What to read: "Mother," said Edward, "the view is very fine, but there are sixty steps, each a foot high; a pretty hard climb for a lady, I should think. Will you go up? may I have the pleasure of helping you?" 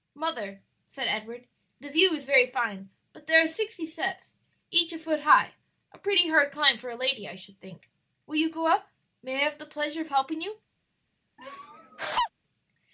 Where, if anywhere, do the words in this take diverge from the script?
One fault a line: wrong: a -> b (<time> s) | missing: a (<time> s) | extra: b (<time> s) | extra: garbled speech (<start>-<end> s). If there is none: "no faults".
no faults